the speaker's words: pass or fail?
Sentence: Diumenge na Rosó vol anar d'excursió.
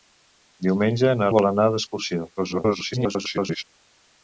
fail